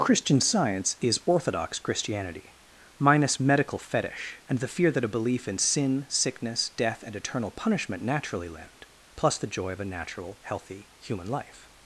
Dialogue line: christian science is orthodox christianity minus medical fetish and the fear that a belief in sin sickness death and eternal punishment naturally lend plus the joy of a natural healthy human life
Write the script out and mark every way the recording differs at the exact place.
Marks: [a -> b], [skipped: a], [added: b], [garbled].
christian science is orthodox christianity minus medical fetish and the fear that a belief in sin sickness death and eternal punishment naturally lend plus the joy of a natural healthy human life